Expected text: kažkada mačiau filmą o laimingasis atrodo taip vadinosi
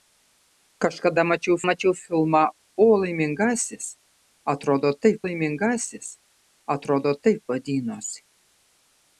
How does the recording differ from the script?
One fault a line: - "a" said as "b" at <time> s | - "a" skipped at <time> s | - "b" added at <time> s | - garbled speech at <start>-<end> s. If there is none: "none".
- "mačiau" added at 1.7 s
- "laimingasis atrodo taip" added at 5.3 s